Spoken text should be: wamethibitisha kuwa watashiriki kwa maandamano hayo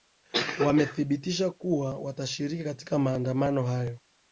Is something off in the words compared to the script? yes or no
yes